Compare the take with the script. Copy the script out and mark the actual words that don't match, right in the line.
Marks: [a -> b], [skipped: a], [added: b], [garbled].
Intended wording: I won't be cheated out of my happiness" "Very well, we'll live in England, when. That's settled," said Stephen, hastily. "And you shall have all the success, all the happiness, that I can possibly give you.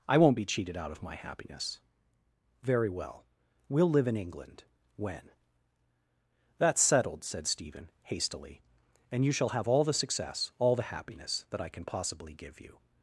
I won't be cheated out of my happiness" "Very well, we'll live in England, when. That's settled," said Stephen, hastily. "And you shall have all the success, all the happiness, that I can possibly give you.